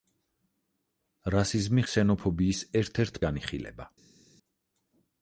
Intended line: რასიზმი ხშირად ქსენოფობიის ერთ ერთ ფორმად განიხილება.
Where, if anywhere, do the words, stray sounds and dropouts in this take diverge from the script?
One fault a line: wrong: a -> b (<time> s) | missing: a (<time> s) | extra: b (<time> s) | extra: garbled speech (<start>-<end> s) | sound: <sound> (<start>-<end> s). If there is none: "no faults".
missing: ხშირად (1.8 s)
missing: ფორმად (3.2 s)